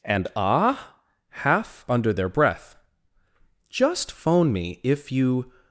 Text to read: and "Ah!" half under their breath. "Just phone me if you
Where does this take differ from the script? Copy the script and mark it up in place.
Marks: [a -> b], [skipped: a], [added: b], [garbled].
and "Ah!" half under their breath. "Just phone me if you